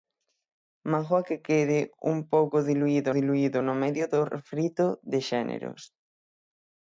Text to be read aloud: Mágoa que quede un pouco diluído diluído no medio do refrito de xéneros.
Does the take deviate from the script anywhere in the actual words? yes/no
no